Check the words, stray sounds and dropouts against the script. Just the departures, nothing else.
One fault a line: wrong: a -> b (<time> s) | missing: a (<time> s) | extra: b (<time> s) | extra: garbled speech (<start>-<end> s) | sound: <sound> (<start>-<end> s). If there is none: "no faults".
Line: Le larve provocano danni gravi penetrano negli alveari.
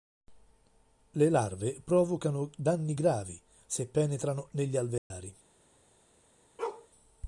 extra: se (3.7 s)
sound: dropout (5.0-5.1 s)
sound: bark (6.6-6.9 s)